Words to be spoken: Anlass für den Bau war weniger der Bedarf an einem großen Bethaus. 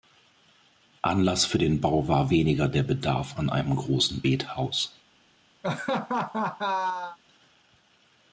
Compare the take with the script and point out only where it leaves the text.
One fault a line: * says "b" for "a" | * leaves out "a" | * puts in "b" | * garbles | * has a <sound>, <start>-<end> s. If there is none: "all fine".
* has a laugh, 5.6-7.2 s